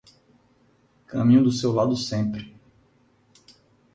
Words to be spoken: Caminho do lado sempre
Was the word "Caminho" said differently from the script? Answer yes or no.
no